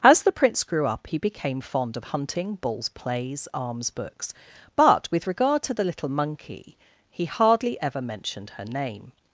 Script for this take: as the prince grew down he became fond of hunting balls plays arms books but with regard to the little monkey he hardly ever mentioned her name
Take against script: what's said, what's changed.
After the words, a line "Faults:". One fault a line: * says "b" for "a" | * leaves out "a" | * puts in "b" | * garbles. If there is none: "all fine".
as the prince grew up he became fond of hunting balls plays arms books but with regard to the little monkey he hardly ever mentioned her name
Faults:
* says "up" for "down"